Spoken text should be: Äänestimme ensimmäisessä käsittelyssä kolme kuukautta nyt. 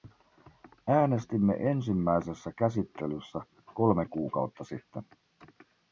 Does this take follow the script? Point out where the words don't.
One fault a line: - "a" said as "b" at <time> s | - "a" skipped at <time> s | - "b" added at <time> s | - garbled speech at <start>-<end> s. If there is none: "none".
- "nyt" said as "sitten" at 4.6 s